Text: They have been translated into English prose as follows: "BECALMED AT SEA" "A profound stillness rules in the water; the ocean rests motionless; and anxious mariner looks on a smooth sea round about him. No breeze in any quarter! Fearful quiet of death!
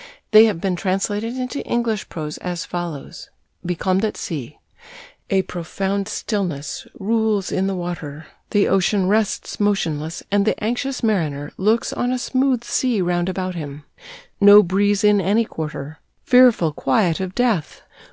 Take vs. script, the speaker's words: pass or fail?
fail